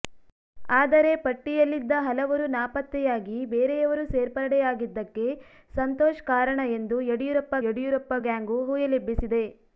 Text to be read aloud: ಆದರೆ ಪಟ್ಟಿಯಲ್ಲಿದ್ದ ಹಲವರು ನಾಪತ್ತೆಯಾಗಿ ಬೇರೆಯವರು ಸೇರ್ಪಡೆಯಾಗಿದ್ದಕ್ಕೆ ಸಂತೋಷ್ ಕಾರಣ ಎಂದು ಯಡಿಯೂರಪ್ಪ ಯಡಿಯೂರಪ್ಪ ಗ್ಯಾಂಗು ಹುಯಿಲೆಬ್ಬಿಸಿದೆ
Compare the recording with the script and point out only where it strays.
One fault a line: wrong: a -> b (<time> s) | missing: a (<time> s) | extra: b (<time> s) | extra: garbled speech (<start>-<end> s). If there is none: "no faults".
no faults